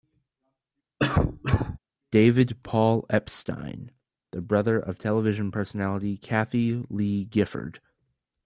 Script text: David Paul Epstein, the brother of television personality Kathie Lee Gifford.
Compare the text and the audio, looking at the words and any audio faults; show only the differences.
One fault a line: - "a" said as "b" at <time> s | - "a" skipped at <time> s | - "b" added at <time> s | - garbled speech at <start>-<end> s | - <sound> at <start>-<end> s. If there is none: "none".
- cough at 1.0-1.8 s